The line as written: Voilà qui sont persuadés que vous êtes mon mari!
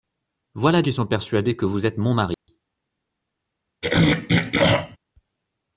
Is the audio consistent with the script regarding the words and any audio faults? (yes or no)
no